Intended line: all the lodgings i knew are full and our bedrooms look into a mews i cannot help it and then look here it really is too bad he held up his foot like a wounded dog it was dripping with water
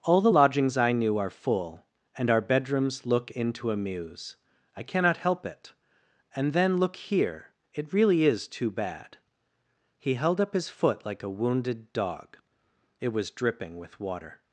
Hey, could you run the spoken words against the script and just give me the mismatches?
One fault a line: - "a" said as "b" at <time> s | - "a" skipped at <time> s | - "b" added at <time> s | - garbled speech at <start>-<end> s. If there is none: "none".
none